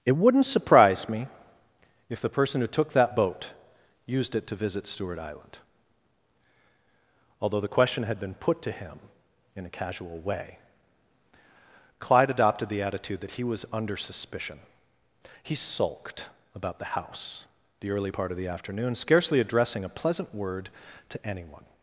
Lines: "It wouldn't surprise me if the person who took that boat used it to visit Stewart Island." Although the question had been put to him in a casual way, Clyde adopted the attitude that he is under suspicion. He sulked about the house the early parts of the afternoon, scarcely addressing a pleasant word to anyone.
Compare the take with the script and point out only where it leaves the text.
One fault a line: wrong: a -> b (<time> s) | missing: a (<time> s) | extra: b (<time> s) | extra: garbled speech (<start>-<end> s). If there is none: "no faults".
wrong: is -> was (13.4 s)
wrong: parts -> part (18.1 s)